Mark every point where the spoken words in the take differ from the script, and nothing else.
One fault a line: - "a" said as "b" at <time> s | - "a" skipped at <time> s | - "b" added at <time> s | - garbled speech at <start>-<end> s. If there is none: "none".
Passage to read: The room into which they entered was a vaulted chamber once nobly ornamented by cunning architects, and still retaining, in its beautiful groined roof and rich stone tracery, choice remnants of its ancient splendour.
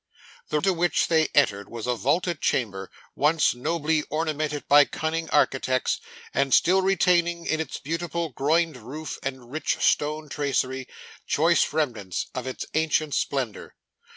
- "room" skipped at 0.6 s